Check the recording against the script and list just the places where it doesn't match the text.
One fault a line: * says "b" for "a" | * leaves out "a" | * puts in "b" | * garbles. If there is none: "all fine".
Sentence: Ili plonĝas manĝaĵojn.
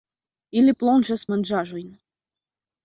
all fine